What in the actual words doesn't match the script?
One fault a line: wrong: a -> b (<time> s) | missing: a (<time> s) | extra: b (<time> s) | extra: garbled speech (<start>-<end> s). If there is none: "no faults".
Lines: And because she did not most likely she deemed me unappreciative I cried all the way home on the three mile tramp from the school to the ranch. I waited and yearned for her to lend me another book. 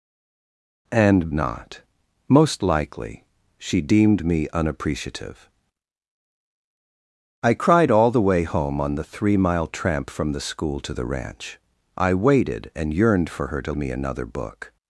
missing: because she did (1.3 s)
missing: lend (13.7 s)